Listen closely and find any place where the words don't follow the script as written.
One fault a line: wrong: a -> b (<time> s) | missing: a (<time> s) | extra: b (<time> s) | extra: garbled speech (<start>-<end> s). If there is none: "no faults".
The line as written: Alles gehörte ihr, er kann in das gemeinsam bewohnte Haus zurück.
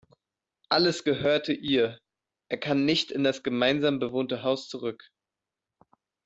extra: nicht (2.8 s)